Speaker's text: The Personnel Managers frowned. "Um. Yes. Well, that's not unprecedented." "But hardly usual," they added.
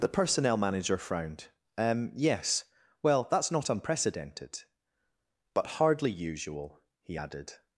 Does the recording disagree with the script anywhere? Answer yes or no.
yes